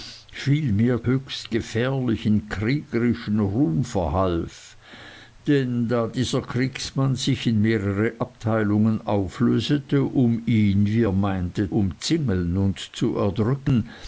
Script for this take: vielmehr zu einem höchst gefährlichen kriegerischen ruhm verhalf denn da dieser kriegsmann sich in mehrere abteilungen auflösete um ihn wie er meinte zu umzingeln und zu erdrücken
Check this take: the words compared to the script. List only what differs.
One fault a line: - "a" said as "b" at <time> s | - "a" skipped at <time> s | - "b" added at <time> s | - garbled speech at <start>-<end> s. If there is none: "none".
- "zu einem" skipped at 1.1 s
- "zu" skipped at 11.7 s